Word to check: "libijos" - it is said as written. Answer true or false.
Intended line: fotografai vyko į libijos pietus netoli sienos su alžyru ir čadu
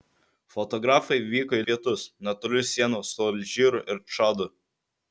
false